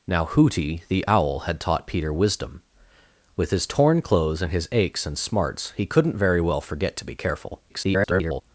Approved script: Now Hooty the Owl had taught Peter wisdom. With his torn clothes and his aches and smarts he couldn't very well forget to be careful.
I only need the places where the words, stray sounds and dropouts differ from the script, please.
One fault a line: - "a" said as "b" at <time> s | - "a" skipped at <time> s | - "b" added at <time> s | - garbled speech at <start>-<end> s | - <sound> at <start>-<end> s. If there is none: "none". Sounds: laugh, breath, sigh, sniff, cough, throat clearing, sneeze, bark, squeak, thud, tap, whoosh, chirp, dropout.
- garbled speech at 7.7-8.4 s